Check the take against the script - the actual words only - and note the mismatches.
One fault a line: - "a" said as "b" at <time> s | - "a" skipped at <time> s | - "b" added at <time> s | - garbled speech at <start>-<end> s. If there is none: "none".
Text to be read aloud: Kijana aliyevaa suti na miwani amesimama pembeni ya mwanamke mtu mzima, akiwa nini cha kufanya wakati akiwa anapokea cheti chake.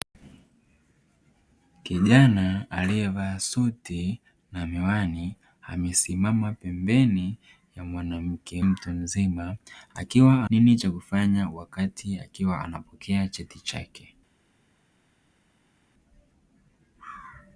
none